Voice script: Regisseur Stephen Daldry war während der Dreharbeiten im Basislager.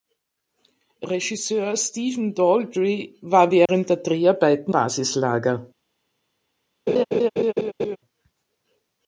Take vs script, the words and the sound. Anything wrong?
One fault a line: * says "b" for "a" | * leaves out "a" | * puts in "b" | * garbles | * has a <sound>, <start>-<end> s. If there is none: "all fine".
* has a dropout, 3.7-3.7 s
* leaves out "im"
* has a laugh, 6.9-8.0 s